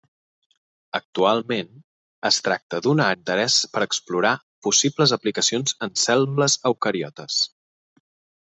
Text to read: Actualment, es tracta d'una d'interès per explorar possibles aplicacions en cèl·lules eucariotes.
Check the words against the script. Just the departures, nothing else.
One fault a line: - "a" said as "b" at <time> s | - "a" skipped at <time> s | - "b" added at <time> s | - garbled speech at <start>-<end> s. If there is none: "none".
none